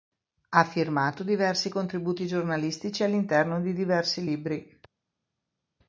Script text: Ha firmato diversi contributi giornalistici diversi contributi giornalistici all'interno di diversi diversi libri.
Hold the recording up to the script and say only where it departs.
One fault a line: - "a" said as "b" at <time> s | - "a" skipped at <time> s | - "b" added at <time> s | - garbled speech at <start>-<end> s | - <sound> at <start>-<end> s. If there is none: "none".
- "diversi contributi giornalistici" skipped at 3.0 s
- "diversi" skipped at 4.2 s